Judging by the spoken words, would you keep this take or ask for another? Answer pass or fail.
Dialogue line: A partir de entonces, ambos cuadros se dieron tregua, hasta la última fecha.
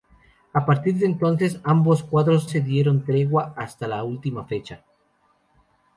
pass